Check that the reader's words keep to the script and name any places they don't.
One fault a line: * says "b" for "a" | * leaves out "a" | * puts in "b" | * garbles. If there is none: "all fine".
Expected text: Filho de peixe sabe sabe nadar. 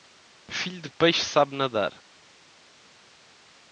* leaves out "sabe"